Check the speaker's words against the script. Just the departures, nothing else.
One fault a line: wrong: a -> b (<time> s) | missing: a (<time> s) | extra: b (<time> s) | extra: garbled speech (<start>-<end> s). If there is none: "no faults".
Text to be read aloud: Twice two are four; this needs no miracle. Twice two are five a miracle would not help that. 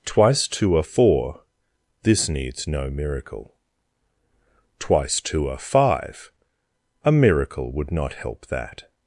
no faults